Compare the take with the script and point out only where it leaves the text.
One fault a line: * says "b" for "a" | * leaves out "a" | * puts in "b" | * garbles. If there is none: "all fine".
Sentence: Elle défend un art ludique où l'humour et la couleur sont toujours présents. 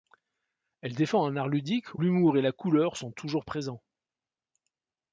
* leaves out "où"